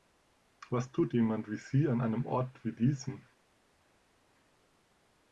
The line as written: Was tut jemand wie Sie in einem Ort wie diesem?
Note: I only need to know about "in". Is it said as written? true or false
false